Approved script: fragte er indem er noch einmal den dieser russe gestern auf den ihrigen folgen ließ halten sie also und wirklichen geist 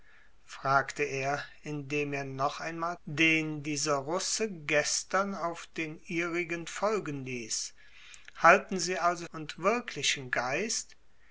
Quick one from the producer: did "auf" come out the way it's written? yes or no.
yes